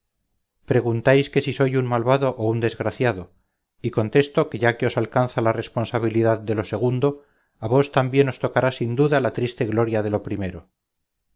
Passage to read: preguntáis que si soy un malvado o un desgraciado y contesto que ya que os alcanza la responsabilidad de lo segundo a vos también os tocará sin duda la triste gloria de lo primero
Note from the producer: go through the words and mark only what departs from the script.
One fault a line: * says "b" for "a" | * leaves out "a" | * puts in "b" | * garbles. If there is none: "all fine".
all fine